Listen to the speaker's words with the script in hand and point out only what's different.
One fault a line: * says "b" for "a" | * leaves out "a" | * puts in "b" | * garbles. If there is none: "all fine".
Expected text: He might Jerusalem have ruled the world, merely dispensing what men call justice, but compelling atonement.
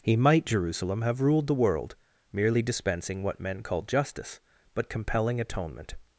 all fine